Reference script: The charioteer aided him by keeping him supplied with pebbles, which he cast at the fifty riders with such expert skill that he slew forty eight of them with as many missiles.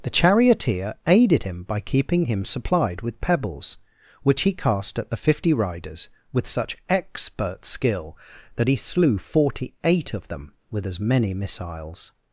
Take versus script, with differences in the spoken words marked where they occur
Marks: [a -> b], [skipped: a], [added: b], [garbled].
The charioteer aided him by keeping him supplied with pebbles, which he cast at the fifty riders with such expert skill that he slew forty eight of them with as many missiles.